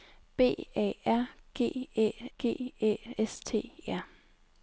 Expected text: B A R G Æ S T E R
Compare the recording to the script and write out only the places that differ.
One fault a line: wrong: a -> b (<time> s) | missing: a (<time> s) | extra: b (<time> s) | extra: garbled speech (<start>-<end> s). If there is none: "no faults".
extra: G Æ (2.4 s)
missing: E (3.7 s)